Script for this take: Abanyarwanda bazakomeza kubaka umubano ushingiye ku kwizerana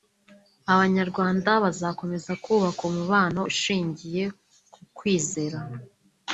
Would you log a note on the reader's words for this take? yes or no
no